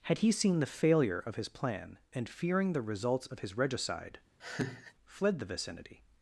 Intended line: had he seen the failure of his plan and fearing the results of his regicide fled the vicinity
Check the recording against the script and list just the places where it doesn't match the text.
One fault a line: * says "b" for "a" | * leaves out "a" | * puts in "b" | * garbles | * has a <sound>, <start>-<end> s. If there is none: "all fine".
* has a laugh, 4.4-4.9 s